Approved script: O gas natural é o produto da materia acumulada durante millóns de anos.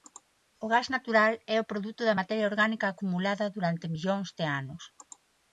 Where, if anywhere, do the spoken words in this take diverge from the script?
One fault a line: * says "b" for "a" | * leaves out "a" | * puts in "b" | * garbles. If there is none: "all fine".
* puts in "orgánica"